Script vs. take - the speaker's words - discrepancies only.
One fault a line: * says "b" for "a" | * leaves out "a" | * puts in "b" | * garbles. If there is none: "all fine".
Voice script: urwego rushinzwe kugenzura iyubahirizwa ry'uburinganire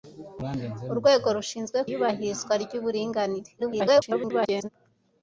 * leaves out "kugenzura"
* garbles